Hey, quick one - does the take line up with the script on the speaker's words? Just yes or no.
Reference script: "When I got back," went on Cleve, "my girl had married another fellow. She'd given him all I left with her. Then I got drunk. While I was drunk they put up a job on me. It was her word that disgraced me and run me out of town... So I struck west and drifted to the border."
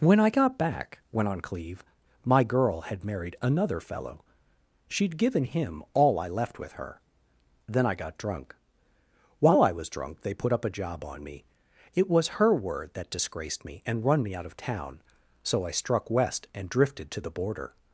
yes